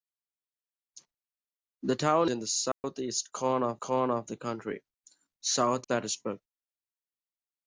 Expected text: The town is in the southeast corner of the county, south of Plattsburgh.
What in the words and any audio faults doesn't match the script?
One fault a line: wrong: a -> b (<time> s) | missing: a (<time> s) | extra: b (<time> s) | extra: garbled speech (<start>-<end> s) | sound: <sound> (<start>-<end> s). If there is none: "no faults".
missing: is (2.3 s)
sound: dropout (2.7-2.8 s)
extra: corner of (3.8 s)
missing: of (5.9 s)